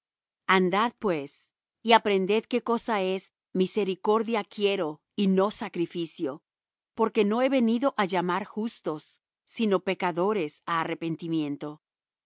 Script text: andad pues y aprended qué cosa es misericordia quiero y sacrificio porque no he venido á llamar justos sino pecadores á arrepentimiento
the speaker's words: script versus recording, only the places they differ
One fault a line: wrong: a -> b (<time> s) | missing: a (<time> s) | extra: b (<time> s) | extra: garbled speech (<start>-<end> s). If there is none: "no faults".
extra: no (5.3 s)